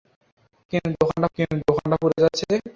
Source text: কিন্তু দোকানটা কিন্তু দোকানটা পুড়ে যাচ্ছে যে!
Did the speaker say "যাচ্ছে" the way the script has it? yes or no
yes